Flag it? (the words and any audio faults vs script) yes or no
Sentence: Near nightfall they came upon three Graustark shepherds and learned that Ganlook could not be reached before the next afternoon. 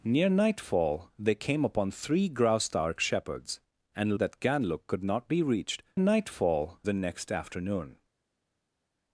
yes